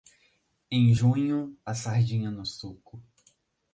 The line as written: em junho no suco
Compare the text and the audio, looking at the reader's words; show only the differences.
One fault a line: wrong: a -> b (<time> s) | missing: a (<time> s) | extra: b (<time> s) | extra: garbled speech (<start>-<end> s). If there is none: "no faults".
extra: a sardinha (1.6 s)